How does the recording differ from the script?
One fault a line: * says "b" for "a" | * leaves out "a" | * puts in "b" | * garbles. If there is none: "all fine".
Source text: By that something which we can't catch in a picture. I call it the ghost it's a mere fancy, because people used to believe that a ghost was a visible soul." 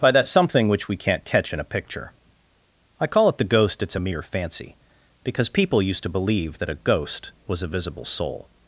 all fine